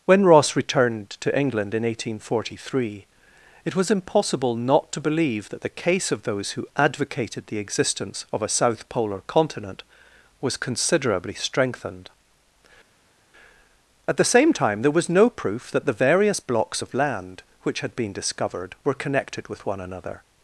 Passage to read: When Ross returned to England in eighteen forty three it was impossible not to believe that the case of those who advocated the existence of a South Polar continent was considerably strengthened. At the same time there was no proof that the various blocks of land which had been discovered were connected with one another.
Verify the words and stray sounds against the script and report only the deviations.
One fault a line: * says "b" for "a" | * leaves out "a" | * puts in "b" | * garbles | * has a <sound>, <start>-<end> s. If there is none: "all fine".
all fine